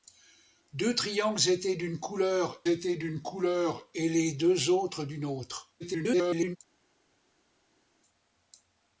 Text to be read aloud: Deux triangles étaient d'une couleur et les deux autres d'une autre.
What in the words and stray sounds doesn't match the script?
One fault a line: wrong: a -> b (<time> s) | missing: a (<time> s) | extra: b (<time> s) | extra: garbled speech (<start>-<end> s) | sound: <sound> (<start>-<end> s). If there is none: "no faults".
extra: étaient d'une couleur (2.7 s)
extra: garbled speech (5.8-6.6 s)